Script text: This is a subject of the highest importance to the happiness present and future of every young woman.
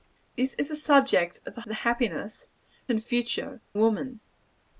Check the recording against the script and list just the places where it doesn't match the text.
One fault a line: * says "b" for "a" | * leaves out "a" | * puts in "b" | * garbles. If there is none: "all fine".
* leaves out "highest importance"
* leaves out "present"
* leaves out "of every young"